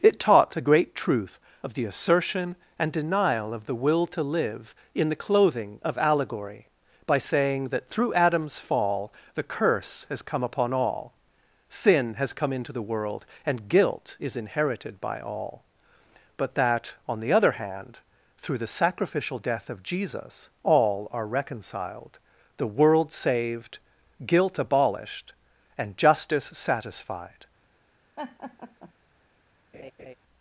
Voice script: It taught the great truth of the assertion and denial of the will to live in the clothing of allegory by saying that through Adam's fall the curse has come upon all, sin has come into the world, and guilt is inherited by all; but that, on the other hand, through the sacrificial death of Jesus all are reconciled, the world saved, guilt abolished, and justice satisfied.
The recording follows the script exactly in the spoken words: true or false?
true